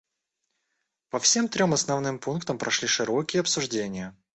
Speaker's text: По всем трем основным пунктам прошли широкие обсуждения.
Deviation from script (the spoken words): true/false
false